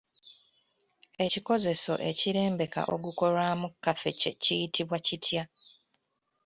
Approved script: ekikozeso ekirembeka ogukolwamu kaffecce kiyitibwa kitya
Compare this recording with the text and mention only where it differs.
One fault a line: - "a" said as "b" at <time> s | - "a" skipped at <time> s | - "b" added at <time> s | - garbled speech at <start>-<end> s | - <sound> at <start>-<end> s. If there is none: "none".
none